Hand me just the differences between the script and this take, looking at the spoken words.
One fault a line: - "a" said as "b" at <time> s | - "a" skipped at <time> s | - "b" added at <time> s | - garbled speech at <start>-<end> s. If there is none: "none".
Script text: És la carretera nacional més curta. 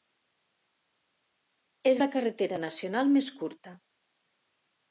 none